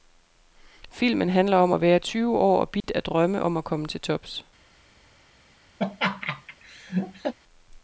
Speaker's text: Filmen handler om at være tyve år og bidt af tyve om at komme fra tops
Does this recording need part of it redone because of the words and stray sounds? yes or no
yes